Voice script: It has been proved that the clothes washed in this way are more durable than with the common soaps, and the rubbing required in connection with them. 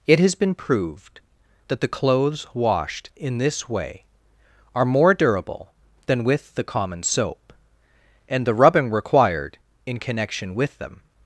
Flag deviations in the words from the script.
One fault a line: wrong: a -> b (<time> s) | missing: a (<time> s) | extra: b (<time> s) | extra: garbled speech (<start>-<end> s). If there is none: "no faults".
wrong: soaps -> soap (7.0 s)